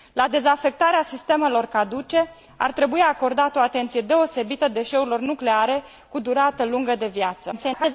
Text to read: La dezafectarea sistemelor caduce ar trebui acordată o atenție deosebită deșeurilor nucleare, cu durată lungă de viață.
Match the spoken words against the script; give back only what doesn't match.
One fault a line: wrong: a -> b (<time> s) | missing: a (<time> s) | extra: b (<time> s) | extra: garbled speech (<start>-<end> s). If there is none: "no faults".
extra: garbled speech (7.5-7.9 s)